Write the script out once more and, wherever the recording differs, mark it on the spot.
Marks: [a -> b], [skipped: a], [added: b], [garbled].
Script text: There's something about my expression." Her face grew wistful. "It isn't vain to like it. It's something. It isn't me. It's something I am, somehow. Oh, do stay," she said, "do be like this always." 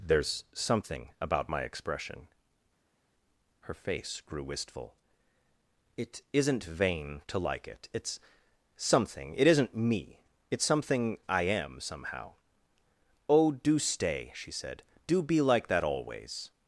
There's something about my expression." Her face grew wistful. "It isn't vain to like it. It's something. It isn't me. It's something I am, somehow. Oh, do stay," she said, "do be like [this -> that] always."